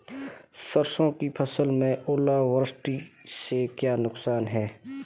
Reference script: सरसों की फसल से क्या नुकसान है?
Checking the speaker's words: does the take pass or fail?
fail